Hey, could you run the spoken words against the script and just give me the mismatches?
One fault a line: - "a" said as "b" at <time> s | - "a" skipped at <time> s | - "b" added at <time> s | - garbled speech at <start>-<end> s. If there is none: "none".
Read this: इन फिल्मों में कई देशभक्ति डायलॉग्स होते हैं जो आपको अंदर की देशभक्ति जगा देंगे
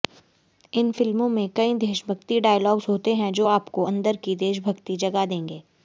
none